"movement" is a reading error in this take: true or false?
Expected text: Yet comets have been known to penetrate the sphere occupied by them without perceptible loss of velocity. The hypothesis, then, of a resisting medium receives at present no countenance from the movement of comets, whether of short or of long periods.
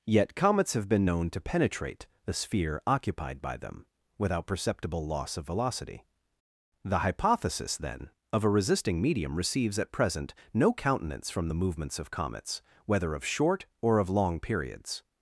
true